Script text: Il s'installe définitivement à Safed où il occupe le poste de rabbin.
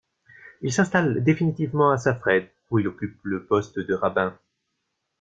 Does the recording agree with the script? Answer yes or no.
yes